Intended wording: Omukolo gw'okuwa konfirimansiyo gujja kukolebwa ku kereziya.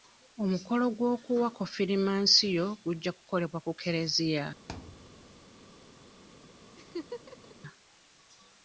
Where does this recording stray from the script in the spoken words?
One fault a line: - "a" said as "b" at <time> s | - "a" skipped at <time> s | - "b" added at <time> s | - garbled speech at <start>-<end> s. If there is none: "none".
none